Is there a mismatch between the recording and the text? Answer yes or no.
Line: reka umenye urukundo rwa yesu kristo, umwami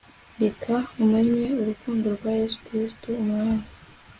no